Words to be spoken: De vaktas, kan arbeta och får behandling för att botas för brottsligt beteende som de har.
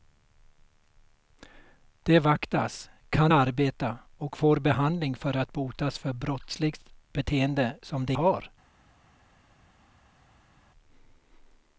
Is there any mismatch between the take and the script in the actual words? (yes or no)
no